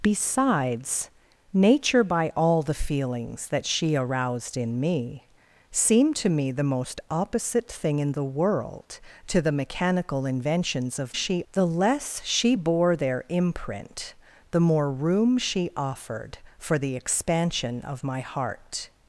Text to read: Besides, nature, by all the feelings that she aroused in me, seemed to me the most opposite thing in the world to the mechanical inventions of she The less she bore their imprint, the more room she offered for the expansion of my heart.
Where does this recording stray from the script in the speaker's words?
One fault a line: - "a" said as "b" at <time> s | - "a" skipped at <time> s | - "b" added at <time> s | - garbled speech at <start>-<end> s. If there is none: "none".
none